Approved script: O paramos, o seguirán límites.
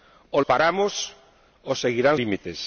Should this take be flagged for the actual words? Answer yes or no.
no